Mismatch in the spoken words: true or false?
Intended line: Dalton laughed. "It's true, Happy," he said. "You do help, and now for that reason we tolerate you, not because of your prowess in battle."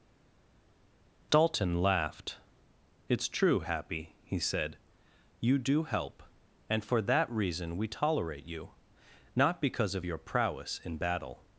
true